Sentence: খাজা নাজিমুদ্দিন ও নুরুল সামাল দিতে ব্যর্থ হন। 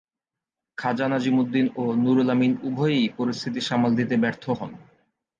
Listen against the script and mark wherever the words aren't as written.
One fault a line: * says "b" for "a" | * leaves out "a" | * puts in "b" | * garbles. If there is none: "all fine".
* puts in "আমিন উভয়েই পরিস্থিতি"